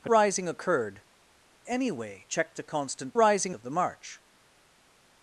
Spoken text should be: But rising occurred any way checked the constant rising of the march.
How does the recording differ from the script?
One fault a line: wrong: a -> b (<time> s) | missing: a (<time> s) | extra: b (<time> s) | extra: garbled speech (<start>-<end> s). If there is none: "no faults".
no faults